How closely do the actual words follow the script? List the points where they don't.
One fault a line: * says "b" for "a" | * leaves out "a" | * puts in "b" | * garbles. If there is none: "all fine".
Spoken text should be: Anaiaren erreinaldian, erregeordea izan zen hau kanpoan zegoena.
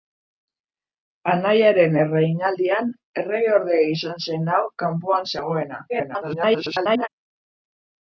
* garbles